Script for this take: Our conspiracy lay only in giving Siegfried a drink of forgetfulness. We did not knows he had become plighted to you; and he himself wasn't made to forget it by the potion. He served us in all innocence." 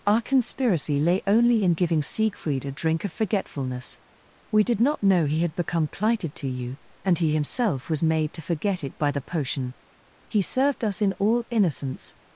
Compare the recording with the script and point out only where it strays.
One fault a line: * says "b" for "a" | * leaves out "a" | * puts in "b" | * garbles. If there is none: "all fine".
* says "know" for "knows"
* says "was" for "wasn't"